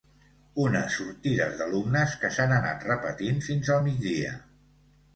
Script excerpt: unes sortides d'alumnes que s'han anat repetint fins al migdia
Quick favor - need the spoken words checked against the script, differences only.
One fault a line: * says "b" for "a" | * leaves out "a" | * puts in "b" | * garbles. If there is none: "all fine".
all fine